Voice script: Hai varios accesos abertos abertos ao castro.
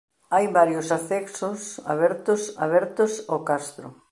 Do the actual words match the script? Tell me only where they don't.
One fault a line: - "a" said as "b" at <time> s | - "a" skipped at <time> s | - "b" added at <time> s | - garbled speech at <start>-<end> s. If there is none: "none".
none